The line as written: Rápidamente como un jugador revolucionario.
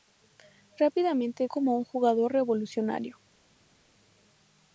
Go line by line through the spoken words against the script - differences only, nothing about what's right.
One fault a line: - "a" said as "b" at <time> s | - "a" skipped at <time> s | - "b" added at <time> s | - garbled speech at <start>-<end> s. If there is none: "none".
none